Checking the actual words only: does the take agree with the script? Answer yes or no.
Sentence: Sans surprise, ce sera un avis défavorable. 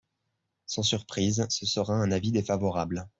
yes